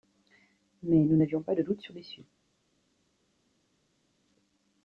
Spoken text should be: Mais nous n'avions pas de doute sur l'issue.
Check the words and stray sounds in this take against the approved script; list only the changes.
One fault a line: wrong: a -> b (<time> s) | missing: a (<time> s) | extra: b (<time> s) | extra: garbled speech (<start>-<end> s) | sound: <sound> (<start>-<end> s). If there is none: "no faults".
no faults